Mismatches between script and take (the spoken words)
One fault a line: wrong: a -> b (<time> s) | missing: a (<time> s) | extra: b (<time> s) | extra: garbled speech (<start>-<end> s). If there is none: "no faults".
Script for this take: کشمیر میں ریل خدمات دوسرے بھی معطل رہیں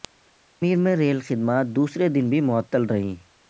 extra: دن (2.1 s)